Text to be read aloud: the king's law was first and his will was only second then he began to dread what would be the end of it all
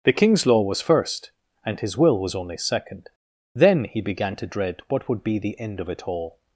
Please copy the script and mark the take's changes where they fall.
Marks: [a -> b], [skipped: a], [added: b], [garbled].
the king's law was first and his will was only second then he began to dread what would be the end of it all